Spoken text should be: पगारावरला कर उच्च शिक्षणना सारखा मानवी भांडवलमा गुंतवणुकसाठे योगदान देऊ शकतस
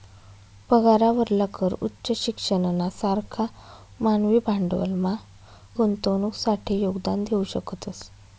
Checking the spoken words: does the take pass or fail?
pass